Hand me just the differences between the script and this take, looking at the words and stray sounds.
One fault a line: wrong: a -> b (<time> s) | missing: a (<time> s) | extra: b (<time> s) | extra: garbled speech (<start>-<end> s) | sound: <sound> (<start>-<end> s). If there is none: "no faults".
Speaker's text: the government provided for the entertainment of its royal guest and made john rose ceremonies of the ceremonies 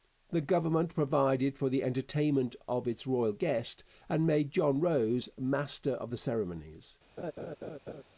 wrong: ceremonies -> master (5.4 s)
sound: laugh (7.2-8.0 s)